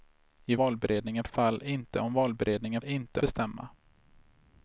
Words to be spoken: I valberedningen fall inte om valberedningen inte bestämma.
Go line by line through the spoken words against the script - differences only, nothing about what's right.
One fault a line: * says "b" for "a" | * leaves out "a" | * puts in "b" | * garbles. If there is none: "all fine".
all fine